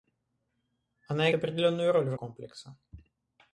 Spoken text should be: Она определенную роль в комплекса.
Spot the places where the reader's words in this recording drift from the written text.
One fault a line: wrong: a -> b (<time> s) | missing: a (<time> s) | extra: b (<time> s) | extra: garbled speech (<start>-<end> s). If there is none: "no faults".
no faults